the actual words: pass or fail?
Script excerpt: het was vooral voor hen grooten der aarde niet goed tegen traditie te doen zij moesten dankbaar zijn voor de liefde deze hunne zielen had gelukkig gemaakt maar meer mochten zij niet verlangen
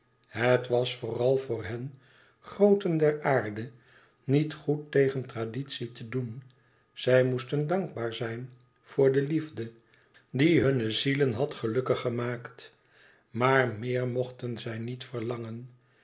fail